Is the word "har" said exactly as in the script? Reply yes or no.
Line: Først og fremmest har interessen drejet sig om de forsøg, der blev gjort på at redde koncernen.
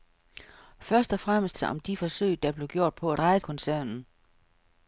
no